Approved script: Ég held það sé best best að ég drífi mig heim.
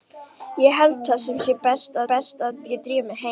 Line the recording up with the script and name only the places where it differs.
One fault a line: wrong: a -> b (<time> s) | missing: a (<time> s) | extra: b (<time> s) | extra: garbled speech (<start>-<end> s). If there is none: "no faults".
no faults